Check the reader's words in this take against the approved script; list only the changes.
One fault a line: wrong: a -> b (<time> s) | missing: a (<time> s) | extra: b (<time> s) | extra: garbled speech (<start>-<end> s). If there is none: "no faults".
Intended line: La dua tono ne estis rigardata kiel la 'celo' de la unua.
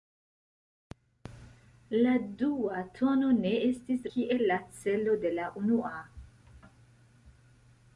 missing: rigardata (4.1 s)